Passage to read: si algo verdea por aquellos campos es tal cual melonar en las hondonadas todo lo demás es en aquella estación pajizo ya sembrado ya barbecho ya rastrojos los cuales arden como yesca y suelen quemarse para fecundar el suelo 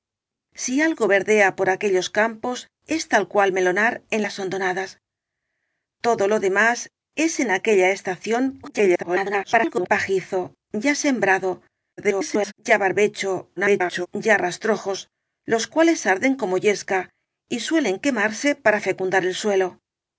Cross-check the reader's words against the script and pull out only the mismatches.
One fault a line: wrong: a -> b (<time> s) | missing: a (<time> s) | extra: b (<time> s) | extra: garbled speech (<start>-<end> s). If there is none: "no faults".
extra: garbled speech (8.6-9.9 s)
extra: garbled speech (12.0-12.5 s)
extra: garbled speech (13.6-14.1 s)